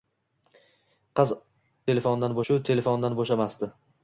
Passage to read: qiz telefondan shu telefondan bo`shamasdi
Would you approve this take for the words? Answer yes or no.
yes